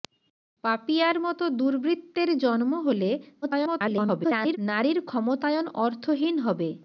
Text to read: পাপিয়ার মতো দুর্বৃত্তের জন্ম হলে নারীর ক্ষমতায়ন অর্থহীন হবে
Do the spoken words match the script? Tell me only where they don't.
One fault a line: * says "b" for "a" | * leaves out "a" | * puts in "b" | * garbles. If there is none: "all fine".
* garbles